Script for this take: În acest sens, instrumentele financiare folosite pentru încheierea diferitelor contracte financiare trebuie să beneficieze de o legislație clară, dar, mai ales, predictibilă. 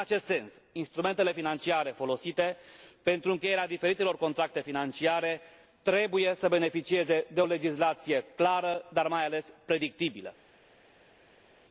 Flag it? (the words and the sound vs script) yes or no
no